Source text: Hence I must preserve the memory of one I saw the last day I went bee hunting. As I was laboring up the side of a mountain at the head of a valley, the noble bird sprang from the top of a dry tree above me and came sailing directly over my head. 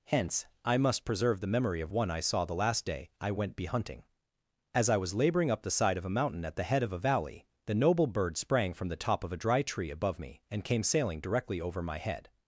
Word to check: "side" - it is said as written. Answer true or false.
true